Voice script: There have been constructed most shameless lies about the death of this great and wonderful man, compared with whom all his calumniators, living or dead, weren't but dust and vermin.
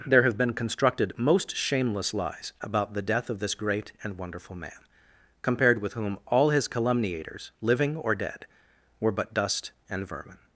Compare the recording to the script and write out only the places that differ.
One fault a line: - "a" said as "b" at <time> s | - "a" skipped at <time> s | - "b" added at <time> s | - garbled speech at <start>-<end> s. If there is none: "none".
- "weren't" said as "were" at 9.0 s